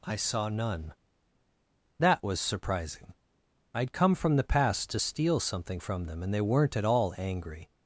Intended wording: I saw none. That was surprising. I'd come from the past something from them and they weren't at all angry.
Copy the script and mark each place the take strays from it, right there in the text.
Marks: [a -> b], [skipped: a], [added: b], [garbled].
I saw none. That was surprising. I'd come from the past [added: to steal] something from them and they weren't at all angry.